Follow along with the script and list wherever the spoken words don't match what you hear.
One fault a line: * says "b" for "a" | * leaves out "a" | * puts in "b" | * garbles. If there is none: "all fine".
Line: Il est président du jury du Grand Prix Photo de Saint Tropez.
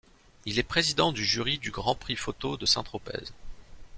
all fine